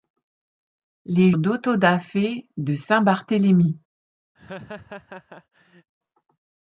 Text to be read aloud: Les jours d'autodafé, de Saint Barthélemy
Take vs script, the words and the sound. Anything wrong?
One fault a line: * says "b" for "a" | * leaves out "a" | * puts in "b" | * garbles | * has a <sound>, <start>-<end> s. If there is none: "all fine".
* leaves out "jours"
* has a laugh, 4.4-5.9 s